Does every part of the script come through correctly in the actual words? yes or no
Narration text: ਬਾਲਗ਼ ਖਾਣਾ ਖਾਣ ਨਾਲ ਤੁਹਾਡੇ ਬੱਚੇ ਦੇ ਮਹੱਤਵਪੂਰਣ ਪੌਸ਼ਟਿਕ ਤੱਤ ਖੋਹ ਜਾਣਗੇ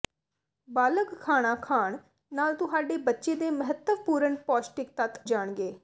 no